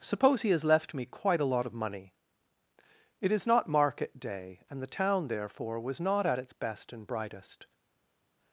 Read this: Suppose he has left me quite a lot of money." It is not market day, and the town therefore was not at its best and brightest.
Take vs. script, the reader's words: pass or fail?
pass